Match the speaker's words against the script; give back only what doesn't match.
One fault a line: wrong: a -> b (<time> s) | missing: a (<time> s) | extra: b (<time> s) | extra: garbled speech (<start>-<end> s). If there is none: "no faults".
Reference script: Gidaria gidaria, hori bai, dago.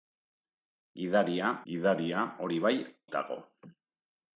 no faults